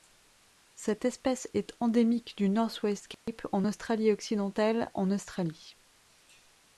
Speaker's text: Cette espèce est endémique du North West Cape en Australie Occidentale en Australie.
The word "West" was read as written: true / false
true